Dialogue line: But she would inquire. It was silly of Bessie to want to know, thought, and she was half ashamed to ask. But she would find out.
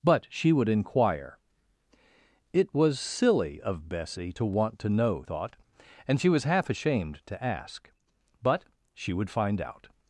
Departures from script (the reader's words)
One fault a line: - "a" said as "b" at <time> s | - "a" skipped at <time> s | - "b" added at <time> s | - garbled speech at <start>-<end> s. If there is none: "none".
none